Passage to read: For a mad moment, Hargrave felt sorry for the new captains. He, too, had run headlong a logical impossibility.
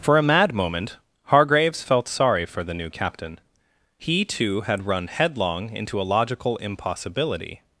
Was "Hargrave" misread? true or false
true